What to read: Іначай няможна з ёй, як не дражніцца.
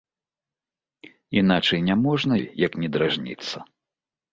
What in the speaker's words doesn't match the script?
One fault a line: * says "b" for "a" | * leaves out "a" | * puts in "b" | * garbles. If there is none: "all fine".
* leaves out "з"